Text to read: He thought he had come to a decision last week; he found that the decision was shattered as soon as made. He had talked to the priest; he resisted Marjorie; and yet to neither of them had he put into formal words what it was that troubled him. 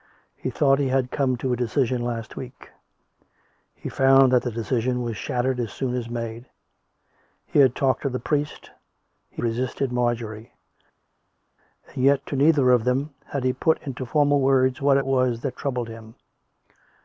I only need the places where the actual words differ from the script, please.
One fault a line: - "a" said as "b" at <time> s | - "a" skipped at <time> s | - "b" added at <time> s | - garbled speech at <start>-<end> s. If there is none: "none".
none